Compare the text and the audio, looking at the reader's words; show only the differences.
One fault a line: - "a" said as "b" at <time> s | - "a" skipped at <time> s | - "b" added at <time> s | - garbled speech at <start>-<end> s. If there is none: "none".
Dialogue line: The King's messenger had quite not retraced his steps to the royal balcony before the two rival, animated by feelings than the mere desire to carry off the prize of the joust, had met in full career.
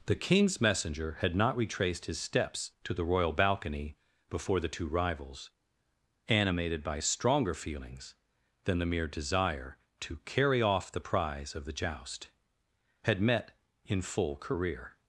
- "quite" skipped at 1.4 s
- "rival" said as "rivals" at 4.9 s
- "stronger" added at 7.0 s